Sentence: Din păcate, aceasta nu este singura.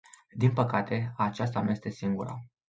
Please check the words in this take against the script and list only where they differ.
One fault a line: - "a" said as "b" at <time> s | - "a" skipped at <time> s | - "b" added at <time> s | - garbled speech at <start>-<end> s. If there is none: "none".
none